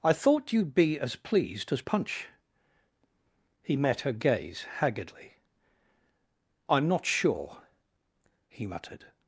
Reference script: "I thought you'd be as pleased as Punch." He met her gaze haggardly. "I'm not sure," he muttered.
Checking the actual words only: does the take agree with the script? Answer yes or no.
yes